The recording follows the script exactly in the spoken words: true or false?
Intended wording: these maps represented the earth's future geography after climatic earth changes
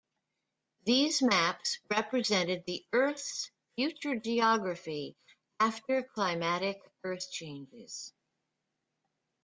true